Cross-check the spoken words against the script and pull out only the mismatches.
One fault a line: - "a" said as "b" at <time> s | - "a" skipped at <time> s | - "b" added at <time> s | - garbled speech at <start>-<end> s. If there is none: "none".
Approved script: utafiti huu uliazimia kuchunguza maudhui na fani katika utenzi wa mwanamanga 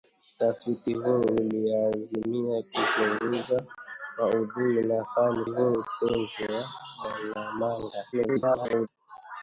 - "katika" said as "huu" at 5.4 s
- garbled speech at 8.1-8.9 s